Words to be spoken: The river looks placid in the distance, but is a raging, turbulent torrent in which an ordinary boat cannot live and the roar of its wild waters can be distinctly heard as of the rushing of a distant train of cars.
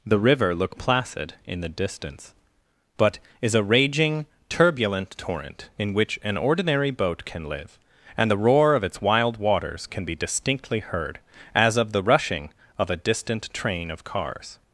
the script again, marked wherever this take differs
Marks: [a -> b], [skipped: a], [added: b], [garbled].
The river [looks -> look] placid in the distance, but is a raging, turbulent torrent in which an ordinary boat [cannot -> can] live and the roar of its wild waters can be distinctly heard as of the rushing of a distant train of cars.